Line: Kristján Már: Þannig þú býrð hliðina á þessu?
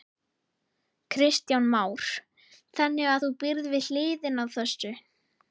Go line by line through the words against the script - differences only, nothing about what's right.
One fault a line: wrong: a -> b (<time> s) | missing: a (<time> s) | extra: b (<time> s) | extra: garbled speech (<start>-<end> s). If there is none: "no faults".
extra: að (3.1 s)
extra: við (3.7 s)